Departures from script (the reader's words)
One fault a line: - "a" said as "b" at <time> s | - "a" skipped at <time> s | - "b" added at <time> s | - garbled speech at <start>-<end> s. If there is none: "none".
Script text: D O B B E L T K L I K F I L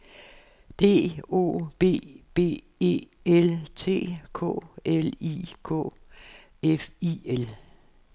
none